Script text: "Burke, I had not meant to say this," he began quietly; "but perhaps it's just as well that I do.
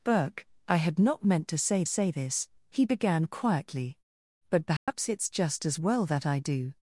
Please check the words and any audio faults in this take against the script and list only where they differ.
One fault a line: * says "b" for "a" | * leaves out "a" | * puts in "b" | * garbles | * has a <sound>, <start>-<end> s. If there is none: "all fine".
* puts in "say"
* has a dropout, 4.8-4.9 s